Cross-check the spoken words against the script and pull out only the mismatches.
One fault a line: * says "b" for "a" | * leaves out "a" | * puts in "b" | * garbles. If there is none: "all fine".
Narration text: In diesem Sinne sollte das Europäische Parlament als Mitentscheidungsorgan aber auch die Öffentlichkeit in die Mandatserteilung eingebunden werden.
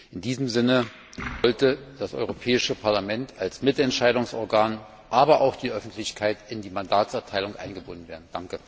all fine